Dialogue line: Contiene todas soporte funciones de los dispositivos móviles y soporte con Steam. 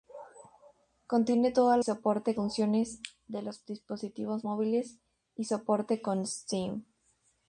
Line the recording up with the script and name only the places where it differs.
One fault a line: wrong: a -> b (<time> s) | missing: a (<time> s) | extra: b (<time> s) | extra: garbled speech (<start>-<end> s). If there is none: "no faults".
no faults